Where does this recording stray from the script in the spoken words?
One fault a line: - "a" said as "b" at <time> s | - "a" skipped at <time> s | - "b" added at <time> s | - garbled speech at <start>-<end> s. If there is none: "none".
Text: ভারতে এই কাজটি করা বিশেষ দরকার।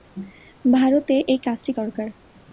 - "করা বিশেষ" skipped at 1.7 s